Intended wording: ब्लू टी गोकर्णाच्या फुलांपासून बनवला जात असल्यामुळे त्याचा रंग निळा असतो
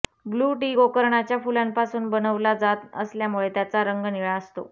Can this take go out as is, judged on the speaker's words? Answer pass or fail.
pass